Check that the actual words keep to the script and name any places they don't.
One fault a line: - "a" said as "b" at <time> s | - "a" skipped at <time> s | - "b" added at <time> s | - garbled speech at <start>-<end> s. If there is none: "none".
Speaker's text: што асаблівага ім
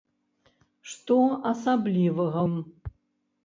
none